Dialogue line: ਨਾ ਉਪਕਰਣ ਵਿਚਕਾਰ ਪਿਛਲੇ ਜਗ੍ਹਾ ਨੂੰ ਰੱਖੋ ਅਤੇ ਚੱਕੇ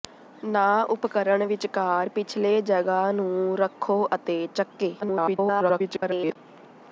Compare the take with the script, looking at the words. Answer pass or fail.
fail